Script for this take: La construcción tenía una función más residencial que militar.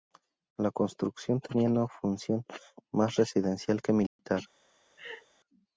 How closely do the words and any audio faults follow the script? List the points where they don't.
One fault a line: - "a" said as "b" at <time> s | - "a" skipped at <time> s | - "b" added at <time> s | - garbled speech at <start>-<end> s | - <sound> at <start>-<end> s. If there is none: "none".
- dropout at 4.1-4.2 s
- laugh at 5.0-5.3 s